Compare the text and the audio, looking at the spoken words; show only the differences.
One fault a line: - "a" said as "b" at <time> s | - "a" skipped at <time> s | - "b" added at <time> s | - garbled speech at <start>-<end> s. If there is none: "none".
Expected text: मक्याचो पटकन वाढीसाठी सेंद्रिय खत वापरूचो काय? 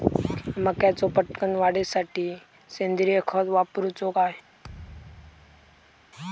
none